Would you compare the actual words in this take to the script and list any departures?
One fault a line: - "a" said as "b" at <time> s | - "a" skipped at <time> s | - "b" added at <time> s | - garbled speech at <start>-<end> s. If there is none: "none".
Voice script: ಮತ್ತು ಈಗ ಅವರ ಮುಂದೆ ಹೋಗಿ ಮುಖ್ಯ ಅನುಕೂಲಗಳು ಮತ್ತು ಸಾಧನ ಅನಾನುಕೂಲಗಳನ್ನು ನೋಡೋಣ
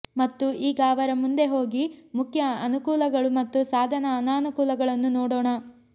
none